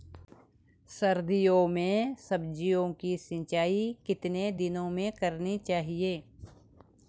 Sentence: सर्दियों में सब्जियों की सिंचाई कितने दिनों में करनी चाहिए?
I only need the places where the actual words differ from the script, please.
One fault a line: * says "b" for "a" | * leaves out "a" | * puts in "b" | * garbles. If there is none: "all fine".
all fine